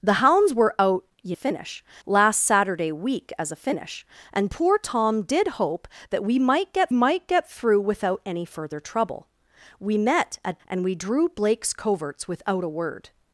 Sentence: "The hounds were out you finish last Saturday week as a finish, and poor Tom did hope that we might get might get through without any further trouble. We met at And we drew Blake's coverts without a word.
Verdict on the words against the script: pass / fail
pass